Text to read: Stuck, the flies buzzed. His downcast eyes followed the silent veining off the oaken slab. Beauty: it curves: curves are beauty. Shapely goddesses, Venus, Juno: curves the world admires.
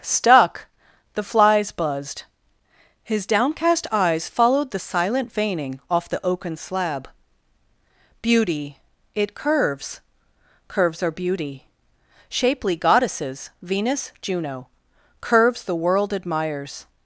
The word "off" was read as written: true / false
true